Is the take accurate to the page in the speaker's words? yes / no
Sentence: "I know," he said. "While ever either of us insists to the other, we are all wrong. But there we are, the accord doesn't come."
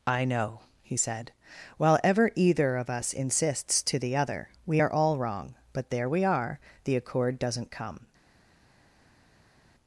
yes